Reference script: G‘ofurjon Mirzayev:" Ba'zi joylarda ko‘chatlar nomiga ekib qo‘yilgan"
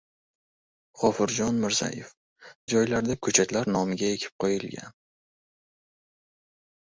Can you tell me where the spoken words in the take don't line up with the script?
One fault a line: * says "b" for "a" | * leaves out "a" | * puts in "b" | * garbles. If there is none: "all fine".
* leaves out "Ba'zi"